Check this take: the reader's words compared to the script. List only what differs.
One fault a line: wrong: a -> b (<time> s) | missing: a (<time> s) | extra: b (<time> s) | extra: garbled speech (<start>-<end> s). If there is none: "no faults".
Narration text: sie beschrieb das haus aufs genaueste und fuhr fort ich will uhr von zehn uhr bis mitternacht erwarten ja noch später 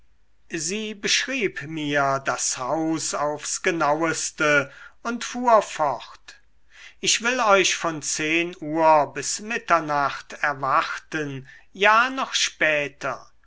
extra: mir (1.7 s)
wrong: uhr -> euch (7.4 s)